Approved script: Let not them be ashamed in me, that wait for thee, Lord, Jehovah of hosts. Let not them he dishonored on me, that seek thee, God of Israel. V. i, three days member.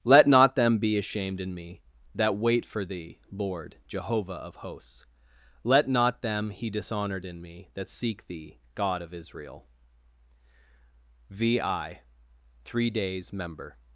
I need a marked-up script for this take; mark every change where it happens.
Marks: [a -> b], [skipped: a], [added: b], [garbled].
Let not them be ashamed in me, that wait for thee, Lord, Jehovah of hosts. Let not them he dishonored [on -> in] me, that seek thee, God of Israel. V. i, three days member.